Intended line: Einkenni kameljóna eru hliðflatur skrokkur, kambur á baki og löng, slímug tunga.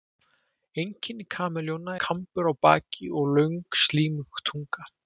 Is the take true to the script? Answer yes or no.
no